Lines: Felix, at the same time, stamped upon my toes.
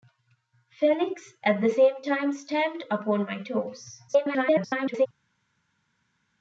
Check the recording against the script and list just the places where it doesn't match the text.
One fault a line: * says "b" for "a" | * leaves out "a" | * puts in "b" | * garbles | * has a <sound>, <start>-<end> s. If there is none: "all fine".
* garbles